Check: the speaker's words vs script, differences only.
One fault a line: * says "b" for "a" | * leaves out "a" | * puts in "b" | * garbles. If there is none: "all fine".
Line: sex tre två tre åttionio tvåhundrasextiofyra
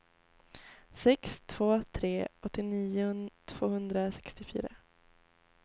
* leaves out "tre"